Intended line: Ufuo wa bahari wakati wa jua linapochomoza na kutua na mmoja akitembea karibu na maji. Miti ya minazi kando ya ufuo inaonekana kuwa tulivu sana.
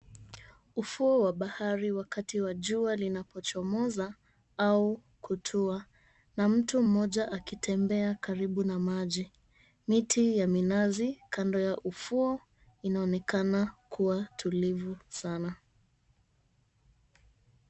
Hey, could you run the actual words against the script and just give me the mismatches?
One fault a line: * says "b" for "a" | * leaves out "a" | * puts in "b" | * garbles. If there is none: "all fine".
* says "au" for "na"
* puts in "mtu"